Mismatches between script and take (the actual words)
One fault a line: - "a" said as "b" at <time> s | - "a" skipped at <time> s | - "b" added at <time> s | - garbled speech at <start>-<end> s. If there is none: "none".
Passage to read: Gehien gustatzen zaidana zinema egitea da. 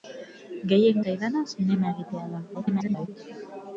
- "gustatzen" skipped at 1.0 s
- garbled speech at 2.5-3.1 s